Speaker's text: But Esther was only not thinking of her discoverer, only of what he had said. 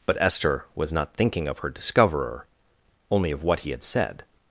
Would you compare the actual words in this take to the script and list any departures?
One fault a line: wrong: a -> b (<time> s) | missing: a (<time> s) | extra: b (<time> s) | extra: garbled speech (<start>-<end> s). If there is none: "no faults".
missing: only (0.9 s)